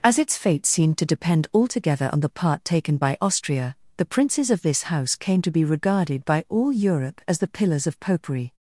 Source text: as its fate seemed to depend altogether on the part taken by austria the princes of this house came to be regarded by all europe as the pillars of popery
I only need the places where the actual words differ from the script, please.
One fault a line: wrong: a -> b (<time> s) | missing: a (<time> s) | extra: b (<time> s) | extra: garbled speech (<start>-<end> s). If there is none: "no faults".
no faults